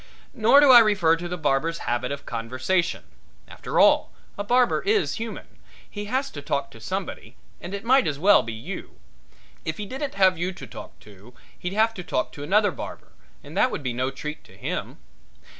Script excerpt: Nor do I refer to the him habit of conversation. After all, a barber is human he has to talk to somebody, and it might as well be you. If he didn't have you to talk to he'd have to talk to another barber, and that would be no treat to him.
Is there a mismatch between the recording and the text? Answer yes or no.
yes